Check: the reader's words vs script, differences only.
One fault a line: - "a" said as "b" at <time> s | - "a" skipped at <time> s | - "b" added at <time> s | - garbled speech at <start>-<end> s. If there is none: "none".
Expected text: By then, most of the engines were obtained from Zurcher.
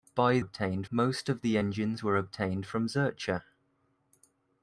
- "then" said as "obtained" at 0.4 s